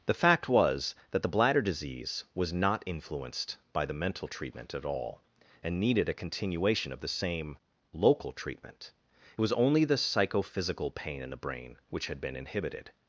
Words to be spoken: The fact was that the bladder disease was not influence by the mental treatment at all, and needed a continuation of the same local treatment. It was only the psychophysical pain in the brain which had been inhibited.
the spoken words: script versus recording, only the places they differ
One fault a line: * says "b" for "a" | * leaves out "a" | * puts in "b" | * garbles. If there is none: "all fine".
* says "influenced" for "influence"